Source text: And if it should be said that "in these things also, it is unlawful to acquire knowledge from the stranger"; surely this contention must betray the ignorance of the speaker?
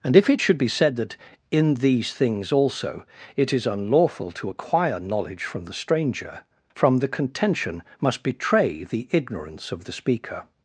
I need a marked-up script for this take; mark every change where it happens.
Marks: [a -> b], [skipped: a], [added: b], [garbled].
And if it should be said that "in these things also, it is unlawful to acquire knowledge from the stranger"; [surely this -> from the] contention must betray the ignorance of the speaker?